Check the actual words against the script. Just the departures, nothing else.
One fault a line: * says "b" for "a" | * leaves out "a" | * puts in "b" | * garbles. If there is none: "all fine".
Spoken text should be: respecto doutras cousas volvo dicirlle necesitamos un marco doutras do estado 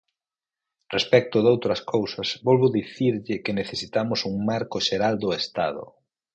* puts in "que"
* says "xeral" for "doutras"